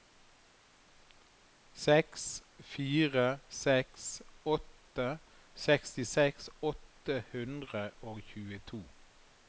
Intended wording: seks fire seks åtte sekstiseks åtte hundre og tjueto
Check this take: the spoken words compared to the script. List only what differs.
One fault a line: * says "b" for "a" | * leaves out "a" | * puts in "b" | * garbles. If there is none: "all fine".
all fine